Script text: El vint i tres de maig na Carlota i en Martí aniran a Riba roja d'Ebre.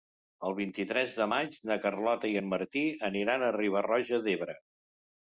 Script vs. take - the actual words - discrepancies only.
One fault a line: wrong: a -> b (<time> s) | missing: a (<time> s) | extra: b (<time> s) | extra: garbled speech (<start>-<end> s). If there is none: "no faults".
no faults